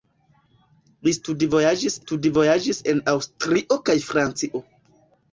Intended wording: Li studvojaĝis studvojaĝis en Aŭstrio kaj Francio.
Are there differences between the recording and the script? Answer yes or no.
no